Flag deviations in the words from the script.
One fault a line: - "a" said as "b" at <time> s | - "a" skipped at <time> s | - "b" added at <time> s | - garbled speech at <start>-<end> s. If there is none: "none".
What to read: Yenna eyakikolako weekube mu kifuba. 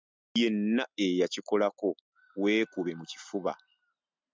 none